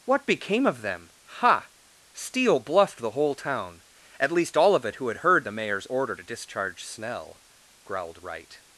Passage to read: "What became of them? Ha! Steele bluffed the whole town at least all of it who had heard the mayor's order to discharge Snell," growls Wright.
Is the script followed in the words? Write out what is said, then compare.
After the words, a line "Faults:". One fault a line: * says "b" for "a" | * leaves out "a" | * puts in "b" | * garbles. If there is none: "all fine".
"What became of them? Ha! Steele bluffed the whole town at least all of it who had heard the mayor's order to discharge Snell," growled Wright.
Faults:
* says "growled" for "growls"